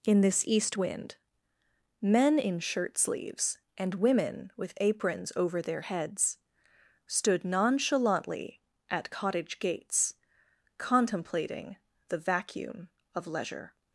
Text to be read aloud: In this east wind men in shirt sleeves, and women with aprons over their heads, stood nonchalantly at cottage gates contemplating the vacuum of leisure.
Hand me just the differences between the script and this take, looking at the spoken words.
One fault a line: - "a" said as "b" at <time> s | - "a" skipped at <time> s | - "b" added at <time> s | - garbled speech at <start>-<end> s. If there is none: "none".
none